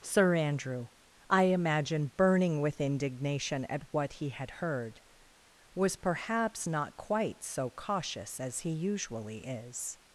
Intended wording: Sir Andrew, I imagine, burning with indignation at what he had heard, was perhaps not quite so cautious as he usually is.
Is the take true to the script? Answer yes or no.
yes